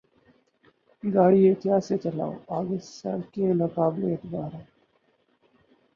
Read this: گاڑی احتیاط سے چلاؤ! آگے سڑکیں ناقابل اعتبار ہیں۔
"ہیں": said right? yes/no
yes